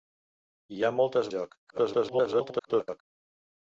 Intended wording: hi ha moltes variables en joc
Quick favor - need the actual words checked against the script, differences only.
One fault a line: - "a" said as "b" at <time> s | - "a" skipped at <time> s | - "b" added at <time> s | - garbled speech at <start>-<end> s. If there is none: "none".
- "variables" skipped at 1.3 s
- garbled speech at 1.7-3.0 s